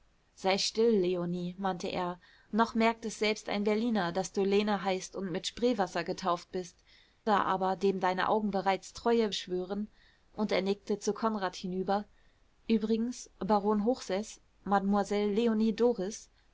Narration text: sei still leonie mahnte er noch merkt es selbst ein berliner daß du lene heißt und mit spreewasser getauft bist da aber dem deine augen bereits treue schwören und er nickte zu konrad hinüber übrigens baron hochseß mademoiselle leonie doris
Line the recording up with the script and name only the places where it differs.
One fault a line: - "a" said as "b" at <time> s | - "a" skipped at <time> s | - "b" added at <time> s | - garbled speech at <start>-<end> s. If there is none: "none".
none